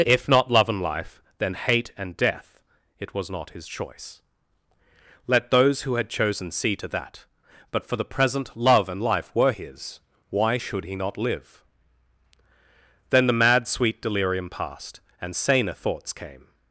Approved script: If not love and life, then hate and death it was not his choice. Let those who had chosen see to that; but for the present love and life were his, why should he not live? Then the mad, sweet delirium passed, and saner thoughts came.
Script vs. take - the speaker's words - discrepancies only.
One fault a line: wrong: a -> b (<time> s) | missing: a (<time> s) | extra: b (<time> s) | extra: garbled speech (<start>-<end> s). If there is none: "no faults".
no faults